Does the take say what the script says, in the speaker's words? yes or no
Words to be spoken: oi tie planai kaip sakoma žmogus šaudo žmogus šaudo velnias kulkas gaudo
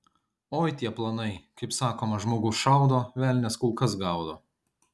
no